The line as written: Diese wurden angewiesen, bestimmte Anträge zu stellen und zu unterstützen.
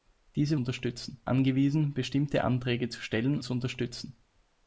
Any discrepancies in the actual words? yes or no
yes